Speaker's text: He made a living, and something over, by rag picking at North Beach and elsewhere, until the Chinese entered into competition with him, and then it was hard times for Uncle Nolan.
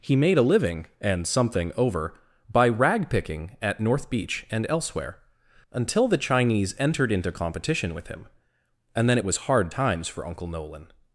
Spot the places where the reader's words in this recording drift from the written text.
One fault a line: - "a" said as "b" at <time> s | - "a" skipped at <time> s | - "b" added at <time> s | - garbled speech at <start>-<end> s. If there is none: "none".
none